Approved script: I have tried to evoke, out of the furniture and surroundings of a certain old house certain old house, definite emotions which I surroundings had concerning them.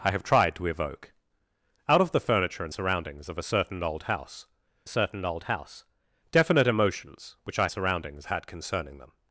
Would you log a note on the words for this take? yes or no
no